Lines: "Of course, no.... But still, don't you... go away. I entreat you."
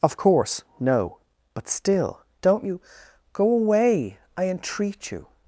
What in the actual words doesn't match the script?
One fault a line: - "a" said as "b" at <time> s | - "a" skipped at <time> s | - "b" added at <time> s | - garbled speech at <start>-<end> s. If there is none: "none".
none